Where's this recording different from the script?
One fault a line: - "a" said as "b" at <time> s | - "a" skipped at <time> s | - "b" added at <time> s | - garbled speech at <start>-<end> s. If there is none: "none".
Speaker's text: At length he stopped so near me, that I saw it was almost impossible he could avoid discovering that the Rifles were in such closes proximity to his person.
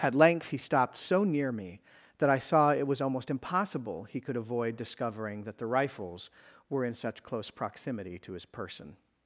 - "closes" said as "close" at 7.2 s